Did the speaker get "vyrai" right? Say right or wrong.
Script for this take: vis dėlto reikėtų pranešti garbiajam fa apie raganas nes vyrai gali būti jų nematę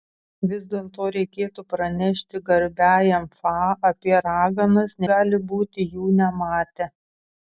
wrong